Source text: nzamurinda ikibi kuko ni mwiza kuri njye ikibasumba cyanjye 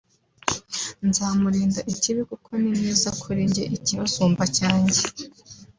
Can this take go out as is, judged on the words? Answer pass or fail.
pass